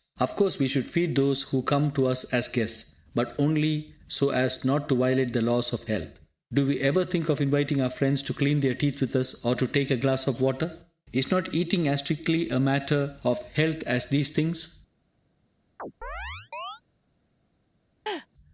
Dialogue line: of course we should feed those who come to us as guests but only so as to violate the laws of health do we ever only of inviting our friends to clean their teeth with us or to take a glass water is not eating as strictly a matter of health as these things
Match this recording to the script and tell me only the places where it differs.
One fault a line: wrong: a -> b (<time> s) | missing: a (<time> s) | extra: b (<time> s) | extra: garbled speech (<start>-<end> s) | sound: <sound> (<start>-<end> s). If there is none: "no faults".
extra: not (4.7 s)
wrong: only -> think (7.0 s)
extra: of (10.3 s)
sound: chirp (15.8-16.8 s)
sound: laugh (18.1-18.3 s)